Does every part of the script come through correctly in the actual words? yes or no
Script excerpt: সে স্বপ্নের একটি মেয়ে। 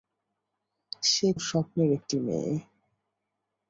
yes